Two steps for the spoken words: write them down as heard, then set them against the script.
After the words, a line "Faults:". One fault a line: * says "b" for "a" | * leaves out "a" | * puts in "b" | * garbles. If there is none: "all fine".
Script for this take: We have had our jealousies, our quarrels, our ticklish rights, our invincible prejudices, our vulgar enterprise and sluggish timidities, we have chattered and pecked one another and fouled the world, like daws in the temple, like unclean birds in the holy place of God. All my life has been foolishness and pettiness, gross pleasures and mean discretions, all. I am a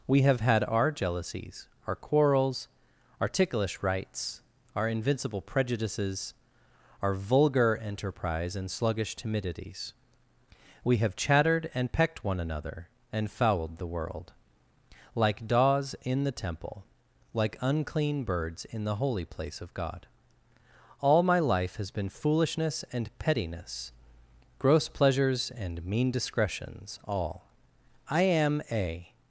We have had our jealousies, our quarrels, our ticklish rights, our invincible prejudices, our vulgar enterprise and sluggish timidities, we have chattered and pecked one another and fouled the world, like daws in the temple, like unclean birds in the holy place of God. All my life has been foolishness and pettiness, gross pleasures and mean discretions, all. I am a
Faults:
all fine